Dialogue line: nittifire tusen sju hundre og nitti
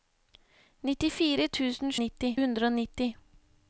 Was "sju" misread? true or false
true